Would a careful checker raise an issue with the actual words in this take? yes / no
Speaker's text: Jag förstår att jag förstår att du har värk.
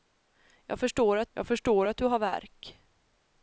no